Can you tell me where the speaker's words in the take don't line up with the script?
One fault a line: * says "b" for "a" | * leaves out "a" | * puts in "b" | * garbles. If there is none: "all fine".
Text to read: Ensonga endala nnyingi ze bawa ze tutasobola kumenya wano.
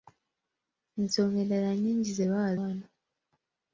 * leaves out "ze tutasobola kumenya"